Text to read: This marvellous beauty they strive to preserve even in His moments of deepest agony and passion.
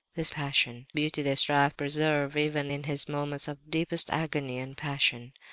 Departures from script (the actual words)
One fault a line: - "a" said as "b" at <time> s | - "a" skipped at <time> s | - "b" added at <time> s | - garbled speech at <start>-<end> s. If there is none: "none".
- "marvellous" said as "passion" at 0.3 s
- "to" skipped at 1.7 s